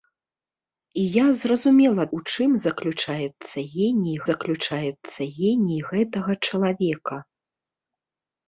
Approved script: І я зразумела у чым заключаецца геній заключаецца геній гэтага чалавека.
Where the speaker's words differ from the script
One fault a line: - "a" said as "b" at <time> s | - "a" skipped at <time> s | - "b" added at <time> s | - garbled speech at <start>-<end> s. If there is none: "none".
none